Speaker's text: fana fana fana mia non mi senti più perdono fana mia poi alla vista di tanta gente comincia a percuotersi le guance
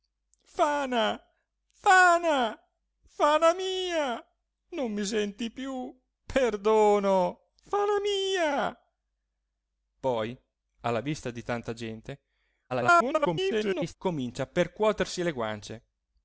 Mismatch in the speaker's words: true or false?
true